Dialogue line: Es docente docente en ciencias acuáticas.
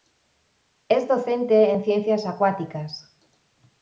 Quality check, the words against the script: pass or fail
fail